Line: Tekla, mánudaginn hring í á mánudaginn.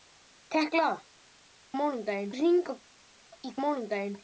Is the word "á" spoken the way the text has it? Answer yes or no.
yes